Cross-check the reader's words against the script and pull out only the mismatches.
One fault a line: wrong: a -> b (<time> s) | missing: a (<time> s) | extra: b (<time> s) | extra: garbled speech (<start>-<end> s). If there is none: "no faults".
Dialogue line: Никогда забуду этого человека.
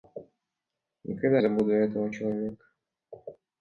no faults